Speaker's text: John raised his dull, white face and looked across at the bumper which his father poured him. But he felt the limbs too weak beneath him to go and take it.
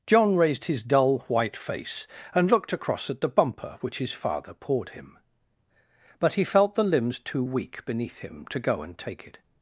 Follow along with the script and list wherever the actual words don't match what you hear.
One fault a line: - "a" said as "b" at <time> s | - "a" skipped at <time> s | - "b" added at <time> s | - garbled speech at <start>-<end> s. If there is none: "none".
none